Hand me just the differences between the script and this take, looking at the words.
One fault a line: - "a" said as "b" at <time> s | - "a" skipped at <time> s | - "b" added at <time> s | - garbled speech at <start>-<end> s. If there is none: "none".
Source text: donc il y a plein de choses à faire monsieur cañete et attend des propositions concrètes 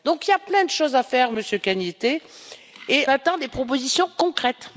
none